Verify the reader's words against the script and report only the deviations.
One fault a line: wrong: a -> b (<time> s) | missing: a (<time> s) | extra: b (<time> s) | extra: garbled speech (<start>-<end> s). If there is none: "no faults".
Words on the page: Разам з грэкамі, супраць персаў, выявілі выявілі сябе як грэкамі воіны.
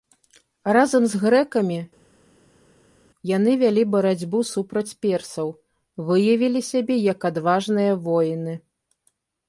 extra: яны вялі барацьбу (3.3 s)
missing: выявілі (6.6 s)
wrong: грэкамі -> адважныя (7.3 s)